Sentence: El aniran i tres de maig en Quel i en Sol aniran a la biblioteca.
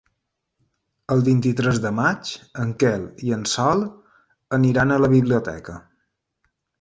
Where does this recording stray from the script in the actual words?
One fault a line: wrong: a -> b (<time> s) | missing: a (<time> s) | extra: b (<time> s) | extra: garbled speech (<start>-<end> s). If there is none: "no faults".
wrong: aniran -> vint (1.3 s)